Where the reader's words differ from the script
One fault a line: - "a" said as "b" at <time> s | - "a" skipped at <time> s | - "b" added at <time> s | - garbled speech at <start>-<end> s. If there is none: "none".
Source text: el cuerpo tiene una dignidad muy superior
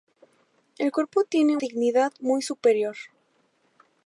- "una" skipped at 1.6 s